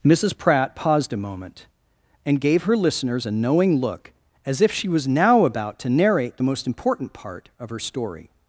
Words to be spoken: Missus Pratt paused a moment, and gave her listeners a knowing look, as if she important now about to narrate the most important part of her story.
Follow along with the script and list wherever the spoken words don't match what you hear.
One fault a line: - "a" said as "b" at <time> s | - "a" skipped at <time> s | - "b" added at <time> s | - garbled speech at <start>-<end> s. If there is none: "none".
- "important" said as "was" at 4.9 s